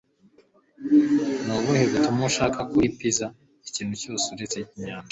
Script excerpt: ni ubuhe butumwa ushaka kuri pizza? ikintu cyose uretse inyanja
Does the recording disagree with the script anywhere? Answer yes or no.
no